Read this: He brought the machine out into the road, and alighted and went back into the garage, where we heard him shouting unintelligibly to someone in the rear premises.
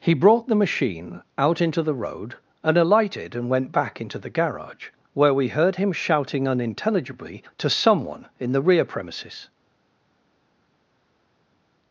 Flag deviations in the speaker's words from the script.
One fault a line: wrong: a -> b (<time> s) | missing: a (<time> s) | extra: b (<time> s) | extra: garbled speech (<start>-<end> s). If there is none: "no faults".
no faults